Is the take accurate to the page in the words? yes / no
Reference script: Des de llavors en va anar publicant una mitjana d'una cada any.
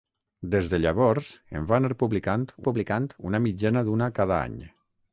no